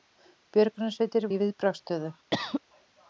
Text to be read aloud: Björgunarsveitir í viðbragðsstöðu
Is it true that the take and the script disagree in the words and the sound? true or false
true